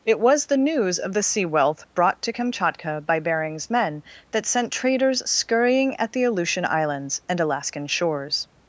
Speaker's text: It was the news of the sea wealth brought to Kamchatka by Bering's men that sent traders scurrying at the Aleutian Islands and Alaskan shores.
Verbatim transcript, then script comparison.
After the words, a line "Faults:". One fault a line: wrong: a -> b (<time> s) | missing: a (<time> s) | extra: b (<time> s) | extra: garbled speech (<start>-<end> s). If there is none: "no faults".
It was the news of the sea wealth brought to Kamchatka by Bering's men that sent traders scurrying at the Aleutian Islands and Alaskan shores.
Faults:
no faults